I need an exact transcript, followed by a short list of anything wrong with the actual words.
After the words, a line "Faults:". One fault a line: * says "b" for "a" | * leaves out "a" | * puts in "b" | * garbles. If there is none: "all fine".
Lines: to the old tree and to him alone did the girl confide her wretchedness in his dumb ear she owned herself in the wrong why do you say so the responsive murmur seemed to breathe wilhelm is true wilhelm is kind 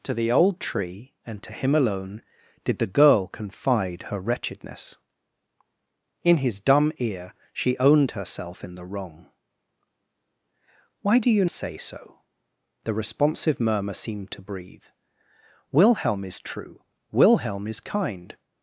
to the old tree and to him alone did the girl confide her wretchedness in his dumb ear she owned herself in the wrong why do you say so the responsive murmur seemed to breathe wilhelm is true wilhelm is kind
Faults:
all fine